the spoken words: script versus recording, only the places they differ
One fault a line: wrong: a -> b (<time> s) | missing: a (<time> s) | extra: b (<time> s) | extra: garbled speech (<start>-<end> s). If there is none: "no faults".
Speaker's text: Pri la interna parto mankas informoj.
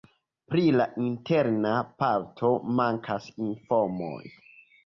no faults